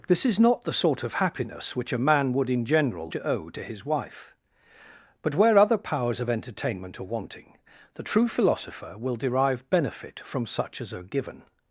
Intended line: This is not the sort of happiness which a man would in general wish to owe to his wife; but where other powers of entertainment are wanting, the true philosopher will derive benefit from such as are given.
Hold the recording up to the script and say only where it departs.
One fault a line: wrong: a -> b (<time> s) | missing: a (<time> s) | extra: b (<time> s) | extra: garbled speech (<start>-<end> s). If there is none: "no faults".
missing: wish (3.1 s)